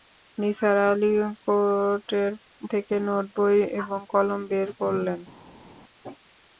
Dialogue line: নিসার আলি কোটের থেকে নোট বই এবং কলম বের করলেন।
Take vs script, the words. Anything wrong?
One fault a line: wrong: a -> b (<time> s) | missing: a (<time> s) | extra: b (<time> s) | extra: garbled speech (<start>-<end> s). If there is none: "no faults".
no faults